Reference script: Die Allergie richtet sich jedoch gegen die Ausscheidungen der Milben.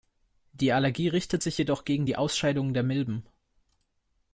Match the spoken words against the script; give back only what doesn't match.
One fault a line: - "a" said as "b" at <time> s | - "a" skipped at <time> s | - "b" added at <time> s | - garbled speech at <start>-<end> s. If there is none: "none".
none